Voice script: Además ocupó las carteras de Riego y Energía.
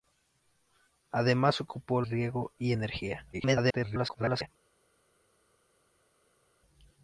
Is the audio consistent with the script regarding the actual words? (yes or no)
no